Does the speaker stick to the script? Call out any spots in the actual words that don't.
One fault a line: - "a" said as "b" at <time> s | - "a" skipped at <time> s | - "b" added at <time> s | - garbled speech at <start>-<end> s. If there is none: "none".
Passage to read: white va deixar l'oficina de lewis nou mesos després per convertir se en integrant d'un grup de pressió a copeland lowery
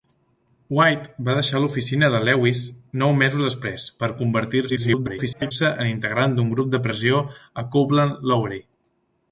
- garbled speech at 4.7-5.5 s